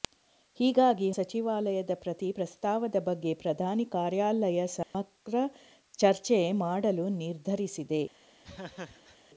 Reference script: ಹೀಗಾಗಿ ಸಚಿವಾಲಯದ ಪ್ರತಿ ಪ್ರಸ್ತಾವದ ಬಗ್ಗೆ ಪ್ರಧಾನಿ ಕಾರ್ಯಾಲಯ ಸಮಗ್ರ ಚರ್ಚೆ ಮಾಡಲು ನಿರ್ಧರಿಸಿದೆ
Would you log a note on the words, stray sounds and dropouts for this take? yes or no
yes